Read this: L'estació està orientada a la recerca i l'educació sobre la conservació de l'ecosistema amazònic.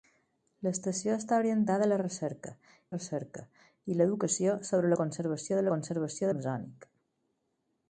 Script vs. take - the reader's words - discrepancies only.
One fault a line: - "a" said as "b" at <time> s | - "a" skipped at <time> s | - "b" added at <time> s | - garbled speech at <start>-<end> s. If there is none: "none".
- "recerca" added at 2.9 s
- "l'ecosistema" said as "conservació" at 5.7 s